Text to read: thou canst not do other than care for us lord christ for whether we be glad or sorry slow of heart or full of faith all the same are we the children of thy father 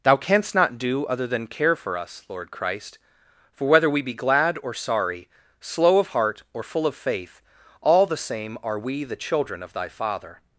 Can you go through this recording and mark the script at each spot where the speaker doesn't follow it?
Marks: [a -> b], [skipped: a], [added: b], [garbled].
thou canst not do other than care for us lord christ for whether we be glad or sorry slow of heart or full of faith all the same are we the children of thy father